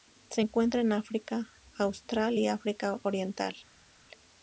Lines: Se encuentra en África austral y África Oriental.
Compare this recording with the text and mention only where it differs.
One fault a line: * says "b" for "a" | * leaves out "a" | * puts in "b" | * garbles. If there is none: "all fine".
all fine